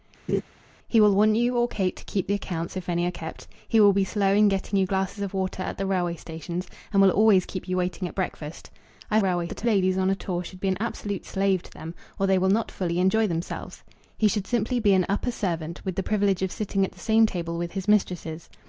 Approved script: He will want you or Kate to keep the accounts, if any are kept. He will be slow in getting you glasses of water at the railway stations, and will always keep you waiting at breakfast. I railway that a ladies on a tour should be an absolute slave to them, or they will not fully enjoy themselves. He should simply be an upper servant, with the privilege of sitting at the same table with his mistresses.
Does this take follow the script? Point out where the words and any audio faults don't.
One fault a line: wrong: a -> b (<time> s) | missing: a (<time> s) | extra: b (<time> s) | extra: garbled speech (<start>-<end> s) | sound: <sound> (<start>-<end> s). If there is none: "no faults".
sound: laugh (0.3-0.4 s)